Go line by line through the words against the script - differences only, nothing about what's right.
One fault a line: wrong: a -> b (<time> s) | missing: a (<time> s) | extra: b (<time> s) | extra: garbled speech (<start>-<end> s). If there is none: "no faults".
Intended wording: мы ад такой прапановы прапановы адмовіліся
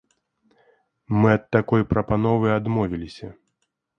missing: прапановы (2.5 s)